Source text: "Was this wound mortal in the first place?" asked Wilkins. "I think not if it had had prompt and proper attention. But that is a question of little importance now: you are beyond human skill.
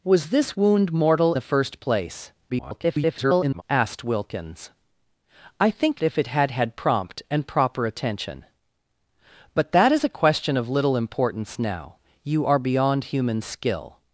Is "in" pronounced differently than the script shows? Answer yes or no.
yes